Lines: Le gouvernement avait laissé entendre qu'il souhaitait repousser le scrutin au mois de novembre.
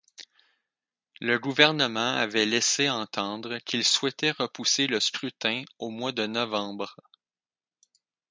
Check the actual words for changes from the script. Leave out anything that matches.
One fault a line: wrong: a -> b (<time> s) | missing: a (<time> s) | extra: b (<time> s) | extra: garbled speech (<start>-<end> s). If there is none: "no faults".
no faults